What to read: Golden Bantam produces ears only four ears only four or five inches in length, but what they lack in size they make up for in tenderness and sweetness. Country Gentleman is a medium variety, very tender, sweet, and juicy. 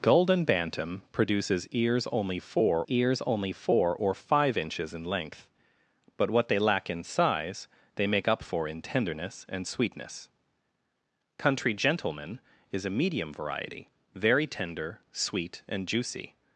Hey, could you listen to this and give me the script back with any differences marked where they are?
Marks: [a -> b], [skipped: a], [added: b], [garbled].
Golden Bantam produces ears only four ears only four or five inches in length, but what they lack in size they make up for in tenderness and sweetness. Country Gentleman is a medium variety, very tender, sweet, and juicy.